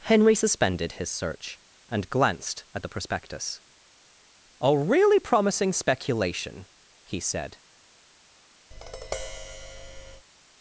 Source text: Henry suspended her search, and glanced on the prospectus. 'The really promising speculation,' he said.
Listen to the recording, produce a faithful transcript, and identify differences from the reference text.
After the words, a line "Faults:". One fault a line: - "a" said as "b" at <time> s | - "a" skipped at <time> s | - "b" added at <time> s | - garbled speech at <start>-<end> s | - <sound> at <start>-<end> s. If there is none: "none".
Henry suspended his search, and glanced at the prospectus. 'A really promising speculation,' he said.
Faults:
- "her" said as "his" at 0.9 s
- "on" said as "at" at 2.7 s
- "The" said as "A" at 4.6 s
- tap at 8.7-10.3 s